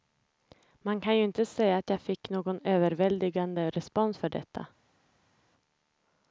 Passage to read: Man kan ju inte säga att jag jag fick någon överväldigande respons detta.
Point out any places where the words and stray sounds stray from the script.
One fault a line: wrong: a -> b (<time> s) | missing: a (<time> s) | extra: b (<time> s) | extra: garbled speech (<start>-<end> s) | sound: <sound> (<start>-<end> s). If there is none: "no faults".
missing: jag (2.0 s)
extra: för (4.2 s)